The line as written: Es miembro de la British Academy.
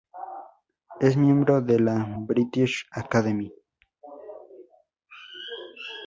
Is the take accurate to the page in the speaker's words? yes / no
yes